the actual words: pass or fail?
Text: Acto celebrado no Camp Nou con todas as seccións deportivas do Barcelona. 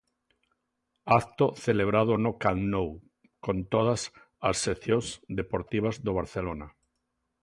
pass